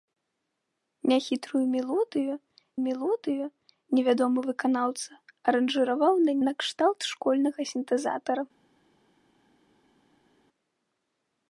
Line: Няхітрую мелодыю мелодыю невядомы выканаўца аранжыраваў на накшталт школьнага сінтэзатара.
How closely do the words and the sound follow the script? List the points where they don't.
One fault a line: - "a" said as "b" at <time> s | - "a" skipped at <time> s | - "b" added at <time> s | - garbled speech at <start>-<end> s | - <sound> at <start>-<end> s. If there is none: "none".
none